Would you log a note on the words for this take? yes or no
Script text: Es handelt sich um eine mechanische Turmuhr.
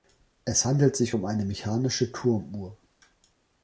no